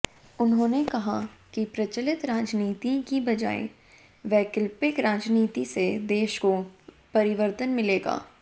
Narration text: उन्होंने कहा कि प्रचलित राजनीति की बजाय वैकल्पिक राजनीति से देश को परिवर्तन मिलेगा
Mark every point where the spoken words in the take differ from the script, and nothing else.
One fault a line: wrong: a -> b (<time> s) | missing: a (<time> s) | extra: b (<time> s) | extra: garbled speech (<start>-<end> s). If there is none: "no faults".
no faults